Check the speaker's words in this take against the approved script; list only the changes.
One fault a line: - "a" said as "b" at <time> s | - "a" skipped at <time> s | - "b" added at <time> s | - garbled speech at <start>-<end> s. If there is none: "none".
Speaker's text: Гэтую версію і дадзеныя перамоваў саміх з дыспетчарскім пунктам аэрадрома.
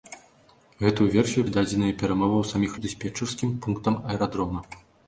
none